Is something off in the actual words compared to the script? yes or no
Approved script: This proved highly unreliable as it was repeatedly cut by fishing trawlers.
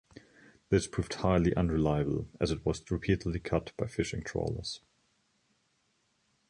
no